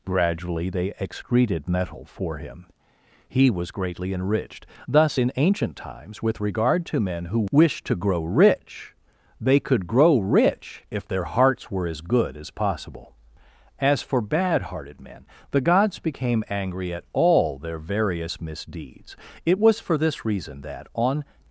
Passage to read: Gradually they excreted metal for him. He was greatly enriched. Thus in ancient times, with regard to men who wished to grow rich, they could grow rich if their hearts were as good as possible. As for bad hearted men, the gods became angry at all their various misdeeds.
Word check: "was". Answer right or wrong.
right